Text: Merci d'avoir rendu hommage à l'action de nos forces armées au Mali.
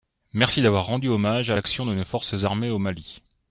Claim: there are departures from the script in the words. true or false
false